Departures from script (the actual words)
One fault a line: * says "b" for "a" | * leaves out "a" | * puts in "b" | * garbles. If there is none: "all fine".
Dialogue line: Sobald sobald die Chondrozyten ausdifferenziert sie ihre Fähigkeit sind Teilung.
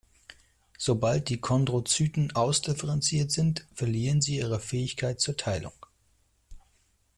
* leaves out "sobald"
* puts in "sind verlieren"
* says "zur" for "sind"